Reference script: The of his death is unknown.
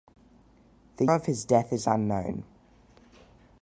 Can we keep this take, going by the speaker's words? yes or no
yes